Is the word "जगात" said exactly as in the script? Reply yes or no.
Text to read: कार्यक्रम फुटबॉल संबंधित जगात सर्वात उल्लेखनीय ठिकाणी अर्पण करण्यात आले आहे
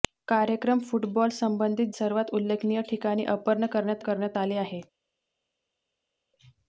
no